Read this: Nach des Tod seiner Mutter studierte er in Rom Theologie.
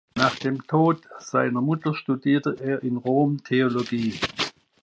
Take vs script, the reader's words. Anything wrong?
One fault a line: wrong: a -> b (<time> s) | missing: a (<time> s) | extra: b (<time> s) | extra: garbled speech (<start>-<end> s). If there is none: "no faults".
wrong: des -> dem (0.3 s)